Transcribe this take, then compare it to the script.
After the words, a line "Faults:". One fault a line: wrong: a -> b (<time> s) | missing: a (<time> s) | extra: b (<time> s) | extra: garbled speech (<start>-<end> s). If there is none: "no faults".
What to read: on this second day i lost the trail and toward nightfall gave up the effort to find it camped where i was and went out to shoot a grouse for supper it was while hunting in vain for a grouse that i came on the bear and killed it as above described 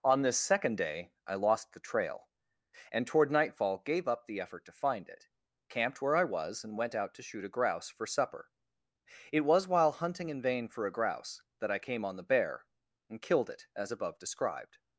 on this second day i lost the trail and toward nightfall gave up the effort to find it camped where i was and went out to shoot a grouse for supper it was while hunting in vain for a grouse that i came on the bear and killed it as above described
Faults:
no faults